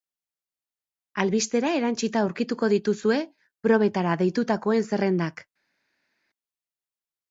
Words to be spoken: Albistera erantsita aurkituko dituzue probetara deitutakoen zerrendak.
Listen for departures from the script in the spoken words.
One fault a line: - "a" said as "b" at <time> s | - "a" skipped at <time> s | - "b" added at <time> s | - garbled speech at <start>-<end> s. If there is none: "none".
none